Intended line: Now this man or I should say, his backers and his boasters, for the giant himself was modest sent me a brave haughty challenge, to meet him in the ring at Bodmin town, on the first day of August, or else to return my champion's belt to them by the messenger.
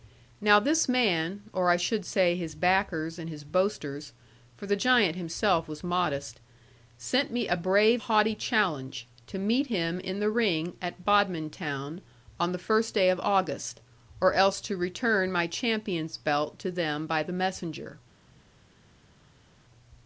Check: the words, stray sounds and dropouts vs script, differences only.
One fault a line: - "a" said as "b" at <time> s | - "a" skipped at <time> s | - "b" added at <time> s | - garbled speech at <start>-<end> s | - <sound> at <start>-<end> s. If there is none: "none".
none